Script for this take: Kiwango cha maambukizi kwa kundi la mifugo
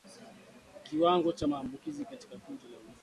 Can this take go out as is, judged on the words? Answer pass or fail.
fail